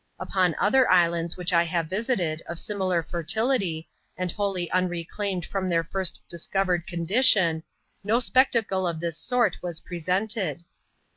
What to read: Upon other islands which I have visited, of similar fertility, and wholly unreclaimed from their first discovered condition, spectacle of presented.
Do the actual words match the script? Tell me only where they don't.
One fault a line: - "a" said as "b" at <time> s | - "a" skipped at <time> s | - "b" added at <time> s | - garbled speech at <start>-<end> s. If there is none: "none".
- "no" added at 8.0 s
- "this sort was" added at 9.0 s